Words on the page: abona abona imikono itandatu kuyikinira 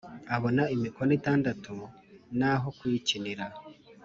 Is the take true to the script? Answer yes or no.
no